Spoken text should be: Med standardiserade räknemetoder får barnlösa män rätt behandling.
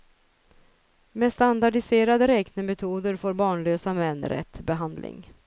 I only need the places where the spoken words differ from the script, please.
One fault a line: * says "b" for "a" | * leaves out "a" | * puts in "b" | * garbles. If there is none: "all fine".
all fine